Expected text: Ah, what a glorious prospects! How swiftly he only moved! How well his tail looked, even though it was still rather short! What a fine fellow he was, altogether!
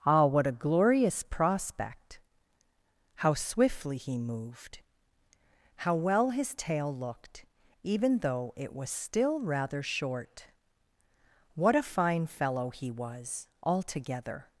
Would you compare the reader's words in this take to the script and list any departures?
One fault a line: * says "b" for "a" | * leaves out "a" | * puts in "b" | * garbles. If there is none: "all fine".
* says "prospect" for "prospects"
* leaves out "only"